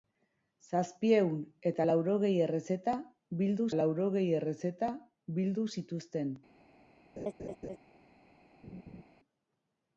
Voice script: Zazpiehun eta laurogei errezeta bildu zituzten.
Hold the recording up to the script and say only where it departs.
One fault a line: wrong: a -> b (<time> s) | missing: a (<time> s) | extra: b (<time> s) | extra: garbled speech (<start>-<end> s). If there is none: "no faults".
extra: laurogei errezeta bildu (3.8 s)